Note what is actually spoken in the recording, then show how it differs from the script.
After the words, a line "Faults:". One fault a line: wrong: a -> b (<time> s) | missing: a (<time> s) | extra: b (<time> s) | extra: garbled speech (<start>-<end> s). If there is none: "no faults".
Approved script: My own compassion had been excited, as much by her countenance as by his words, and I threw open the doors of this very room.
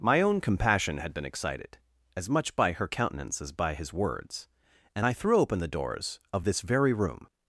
My own compassion had been excited, as much by her countenance as by his words, and I threw open the doors of this very room.
Faults:
no faults